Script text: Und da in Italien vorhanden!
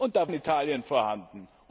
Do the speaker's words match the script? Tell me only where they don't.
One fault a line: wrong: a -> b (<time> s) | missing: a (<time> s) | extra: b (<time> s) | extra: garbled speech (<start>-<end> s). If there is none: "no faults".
no faults